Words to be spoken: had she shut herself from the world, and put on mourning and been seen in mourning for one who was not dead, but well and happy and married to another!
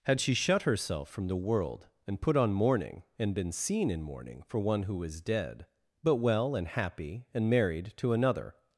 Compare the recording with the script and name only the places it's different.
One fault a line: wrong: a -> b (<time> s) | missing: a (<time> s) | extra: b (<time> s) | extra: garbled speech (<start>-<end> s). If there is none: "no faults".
missing: not (5.2 s)